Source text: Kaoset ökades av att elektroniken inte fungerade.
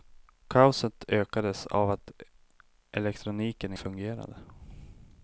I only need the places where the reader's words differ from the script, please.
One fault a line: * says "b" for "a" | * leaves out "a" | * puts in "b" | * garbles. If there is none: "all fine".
* leaves out "inte"